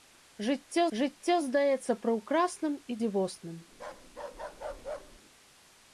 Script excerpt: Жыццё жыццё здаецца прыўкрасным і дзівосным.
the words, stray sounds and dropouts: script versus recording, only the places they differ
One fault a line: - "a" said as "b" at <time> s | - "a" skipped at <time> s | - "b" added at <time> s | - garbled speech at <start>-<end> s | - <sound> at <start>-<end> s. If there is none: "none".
- bark at 3.7-5.2 s